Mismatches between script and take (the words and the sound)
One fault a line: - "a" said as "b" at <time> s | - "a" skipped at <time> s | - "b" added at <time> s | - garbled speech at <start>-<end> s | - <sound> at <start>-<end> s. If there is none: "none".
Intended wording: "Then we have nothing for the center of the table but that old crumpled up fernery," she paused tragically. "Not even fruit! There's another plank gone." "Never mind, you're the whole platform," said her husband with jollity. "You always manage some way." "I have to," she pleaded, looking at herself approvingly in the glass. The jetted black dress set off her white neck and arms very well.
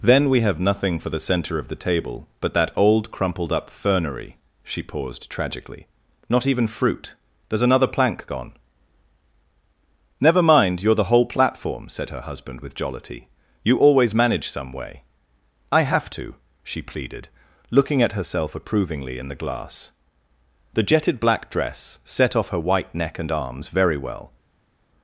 none